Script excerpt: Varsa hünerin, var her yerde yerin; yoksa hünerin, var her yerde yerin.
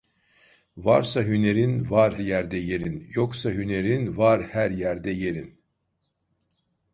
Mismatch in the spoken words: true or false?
true